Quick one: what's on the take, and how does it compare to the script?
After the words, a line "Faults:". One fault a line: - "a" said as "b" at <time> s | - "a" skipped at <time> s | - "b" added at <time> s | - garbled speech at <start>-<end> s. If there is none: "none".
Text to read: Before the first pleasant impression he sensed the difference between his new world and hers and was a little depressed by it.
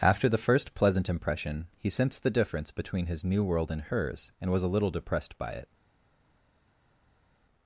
After the first pleasant impression he sensed the difference between his new world and hers and was a little depressed by it.
Faults:
- "Before" said as "After" at 0.0 s